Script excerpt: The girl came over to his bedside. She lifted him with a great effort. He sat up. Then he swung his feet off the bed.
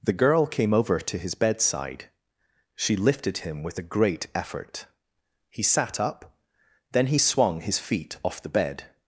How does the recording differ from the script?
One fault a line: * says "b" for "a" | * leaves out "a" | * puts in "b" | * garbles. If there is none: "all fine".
all fine